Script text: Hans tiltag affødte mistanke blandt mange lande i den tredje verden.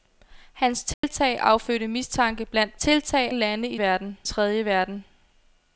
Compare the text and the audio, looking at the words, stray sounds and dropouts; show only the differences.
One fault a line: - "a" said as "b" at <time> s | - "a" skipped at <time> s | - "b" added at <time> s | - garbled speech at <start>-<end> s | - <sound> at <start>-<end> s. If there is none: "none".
- dropout at 0.9-1.0 s
- "mange" said as "tiltag" at 2.8 s
- "den" said as "verden" at 3.8 s